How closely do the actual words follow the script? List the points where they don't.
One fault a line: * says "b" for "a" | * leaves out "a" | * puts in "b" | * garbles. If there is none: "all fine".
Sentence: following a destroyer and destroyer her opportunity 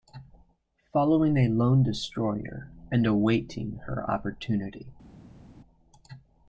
* puts in "lone"
* says "awaiting" for "destroyer"